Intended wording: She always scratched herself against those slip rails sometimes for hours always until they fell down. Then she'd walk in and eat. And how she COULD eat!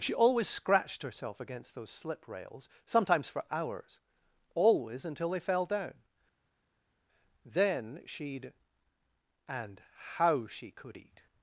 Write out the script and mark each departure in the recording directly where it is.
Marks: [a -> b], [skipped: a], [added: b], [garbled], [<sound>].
She always scratched herself against those slip rails sometimes for hours always until they fell down. Then she'd [skipped: walk in and eat.] And how she COULD eat!